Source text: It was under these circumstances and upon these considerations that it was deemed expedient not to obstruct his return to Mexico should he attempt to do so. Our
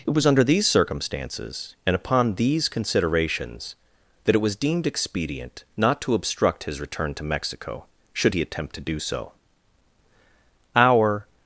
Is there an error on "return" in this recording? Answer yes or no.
no